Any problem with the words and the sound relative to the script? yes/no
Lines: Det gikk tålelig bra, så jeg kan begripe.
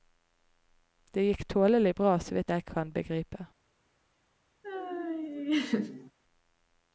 yes